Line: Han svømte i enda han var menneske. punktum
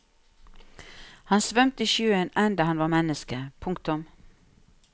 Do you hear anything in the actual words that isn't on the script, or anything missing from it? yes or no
yes